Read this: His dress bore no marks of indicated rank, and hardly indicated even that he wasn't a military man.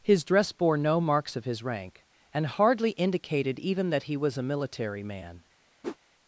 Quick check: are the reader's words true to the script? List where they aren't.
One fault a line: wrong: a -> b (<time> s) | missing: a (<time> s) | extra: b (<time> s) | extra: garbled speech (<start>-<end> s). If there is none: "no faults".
wrong: indicated -> his (1.4 s)
wrong: wasn't -> was (4.1 s)